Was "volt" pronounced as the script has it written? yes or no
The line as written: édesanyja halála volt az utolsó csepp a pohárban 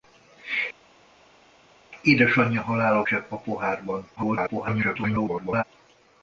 no